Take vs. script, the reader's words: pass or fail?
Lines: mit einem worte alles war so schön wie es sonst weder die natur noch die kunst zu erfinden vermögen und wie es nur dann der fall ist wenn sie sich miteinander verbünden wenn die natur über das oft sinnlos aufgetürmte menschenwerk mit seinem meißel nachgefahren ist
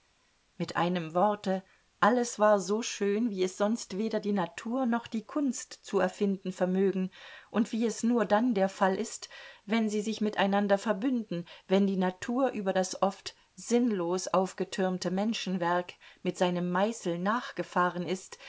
pass